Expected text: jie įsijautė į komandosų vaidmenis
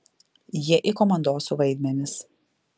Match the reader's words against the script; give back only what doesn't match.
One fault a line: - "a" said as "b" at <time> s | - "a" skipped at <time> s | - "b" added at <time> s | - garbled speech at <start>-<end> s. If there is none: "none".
- "įsijautė" skipped at 0.8 s